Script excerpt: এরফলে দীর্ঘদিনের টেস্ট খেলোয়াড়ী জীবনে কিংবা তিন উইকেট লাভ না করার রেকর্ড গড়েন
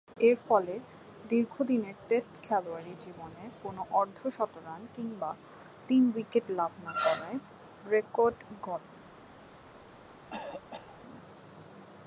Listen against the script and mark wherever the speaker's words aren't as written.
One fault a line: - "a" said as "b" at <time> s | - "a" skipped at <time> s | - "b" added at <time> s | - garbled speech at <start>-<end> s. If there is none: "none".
- "কোন অর্ধ শতরান" added at 3.6 s